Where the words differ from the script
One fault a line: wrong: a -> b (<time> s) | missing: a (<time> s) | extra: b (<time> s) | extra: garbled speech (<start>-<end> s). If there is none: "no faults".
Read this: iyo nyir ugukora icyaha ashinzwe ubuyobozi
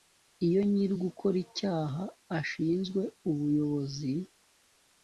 no faults